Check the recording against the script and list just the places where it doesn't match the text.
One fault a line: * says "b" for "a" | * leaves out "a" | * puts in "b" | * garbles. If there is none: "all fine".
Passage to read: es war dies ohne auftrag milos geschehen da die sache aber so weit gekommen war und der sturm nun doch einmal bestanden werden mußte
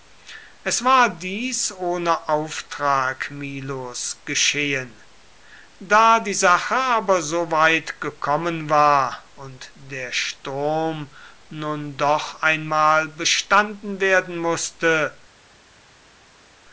all fine